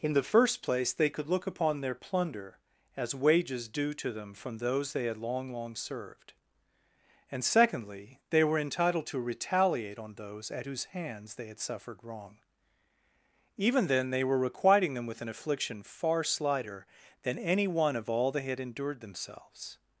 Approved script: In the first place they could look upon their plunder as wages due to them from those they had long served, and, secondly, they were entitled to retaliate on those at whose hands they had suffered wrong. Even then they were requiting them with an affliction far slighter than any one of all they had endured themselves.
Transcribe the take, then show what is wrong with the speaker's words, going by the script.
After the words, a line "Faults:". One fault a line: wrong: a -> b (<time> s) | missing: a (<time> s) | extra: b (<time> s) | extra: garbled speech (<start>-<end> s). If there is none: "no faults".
In the first place they could look upon their plunder as wages due to them from those they had long long served, and, secondly, they were entitled to retaliate on those at whose hands they had suffered wrong. Even then they were requiting them with an affliction far slighter than any one of all they had endured themselves.
Faults:
extra: long (5.5 s)